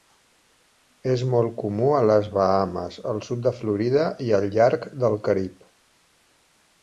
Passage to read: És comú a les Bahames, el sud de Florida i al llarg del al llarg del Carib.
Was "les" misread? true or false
false